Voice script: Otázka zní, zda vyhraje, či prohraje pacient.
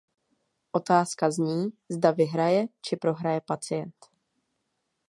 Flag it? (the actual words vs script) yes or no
no